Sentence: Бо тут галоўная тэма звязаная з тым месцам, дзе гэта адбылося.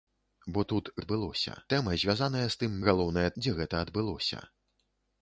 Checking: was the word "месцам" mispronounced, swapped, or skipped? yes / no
yes